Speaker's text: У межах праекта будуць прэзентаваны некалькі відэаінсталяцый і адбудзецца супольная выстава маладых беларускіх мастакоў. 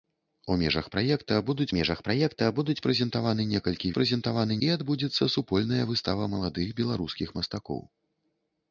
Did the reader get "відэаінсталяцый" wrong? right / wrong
wrong